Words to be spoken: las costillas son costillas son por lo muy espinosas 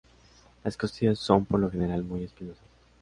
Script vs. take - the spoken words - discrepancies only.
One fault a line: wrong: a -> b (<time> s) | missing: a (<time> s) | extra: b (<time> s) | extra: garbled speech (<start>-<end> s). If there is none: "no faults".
missing: costillas son (1.4 s)
extra: general (1.7 s)